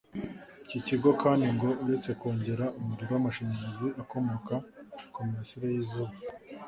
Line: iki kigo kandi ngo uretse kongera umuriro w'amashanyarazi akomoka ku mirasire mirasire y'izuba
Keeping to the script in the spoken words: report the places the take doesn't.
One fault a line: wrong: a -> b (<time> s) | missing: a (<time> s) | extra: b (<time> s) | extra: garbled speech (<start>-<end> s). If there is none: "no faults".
missing: mirasire (5.7 s)